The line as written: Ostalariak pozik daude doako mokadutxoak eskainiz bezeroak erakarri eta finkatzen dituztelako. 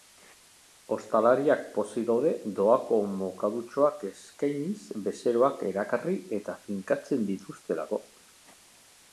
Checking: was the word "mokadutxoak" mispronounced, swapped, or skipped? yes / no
no